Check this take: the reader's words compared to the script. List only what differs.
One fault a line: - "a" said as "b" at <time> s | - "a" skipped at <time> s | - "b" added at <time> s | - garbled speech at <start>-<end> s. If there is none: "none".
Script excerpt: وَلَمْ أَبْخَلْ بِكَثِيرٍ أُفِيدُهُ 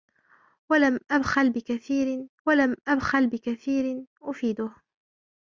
- "وَلَمْ أَبْخَلْ بِكَثِيرٍ" added at 2.5 s